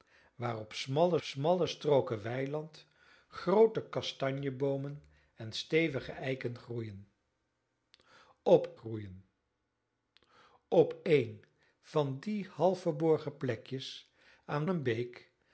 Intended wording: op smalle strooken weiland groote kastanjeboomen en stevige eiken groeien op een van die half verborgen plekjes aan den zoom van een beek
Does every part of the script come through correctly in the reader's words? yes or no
no